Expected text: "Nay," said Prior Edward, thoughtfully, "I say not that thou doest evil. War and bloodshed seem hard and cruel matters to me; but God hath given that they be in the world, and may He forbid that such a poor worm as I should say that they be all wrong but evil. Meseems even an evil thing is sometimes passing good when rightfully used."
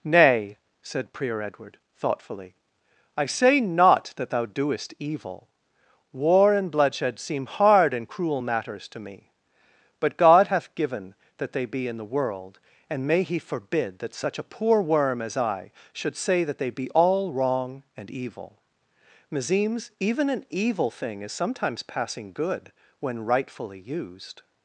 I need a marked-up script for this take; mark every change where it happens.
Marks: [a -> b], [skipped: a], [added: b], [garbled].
"Nay," said Prior Edward, thoughtfully, "I say not that thou doest evil. War and bloodshed seem hard and cruel matters to me; but God hath given that they be in the world, and may He forbid that such a poor worm as I should say that they be all wrong [but -> and] evil. Meseems even an evil thing is sometimes passing good when rightfully used."